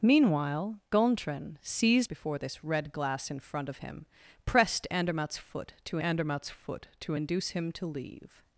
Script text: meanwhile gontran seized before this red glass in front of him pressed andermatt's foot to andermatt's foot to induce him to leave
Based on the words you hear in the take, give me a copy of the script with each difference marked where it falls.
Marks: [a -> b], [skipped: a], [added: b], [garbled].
meanwhile gontran seized before this red glass in front of him pressed andermatt's foot to andermatt's foot to induce him to leave